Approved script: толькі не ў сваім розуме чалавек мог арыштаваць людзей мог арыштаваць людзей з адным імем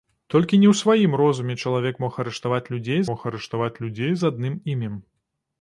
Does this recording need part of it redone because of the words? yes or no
no